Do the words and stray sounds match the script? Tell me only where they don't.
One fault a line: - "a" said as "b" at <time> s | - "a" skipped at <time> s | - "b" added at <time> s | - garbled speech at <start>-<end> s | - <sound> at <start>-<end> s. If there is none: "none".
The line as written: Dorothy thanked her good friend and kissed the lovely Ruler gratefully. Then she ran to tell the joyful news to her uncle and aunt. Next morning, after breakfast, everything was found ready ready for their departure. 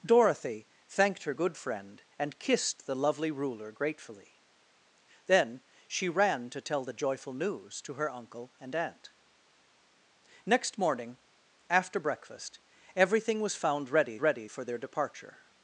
none